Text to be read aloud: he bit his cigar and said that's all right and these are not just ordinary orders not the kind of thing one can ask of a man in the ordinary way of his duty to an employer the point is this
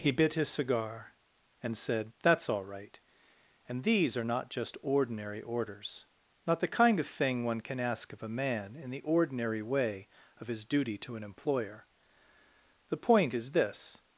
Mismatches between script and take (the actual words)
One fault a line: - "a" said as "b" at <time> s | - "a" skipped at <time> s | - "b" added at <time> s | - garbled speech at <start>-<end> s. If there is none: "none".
none